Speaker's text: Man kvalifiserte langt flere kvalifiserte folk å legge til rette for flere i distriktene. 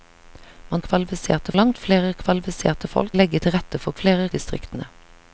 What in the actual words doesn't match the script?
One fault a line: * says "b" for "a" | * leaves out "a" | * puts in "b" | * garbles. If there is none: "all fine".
all fine